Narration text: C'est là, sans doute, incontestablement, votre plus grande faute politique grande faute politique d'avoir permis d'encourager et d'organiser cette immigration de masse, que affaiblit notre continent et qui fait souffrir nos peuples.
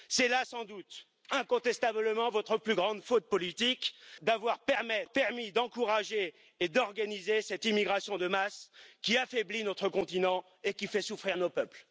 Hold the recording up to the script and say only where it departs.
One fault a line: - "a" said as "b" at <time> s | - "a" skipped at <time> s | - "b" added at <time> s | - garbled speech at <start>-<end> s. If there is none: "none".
- "grande faute politique" skipped at 4.0 s
- "que" said as "qui" at 9.0 s